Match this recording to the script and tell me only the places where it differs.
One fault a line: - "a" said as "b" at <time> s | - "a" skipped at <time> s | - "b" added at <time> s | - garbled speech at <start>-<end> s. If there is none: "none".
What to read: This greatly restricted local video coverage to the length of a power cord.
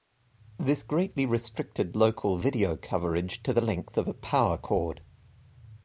none